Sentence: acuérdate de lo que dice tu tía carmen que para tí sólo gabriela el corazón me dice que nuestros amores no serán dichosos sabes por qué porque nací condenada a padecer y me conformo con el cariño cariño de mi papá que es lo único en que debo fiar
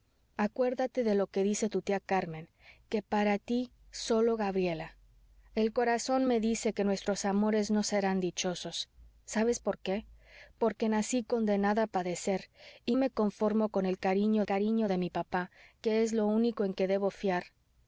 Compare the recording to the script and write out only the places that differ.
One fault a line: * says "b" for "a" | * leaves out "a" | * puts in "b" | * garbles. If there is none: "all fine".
all fine